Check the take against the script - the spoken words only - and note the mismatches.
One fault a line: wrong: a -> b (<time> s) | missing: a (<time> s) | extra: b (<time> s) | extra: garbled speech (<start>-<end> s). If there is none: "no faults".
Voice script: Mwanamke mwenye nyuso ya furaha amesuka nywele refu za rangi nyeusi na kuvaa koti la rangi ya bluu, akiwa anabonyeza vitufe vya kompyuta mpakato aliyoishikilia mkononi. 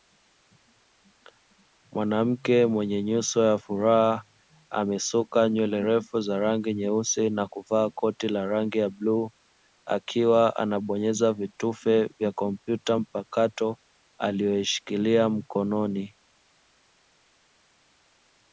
no faults